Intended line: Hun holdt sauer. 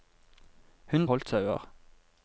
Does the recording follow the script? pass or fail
pass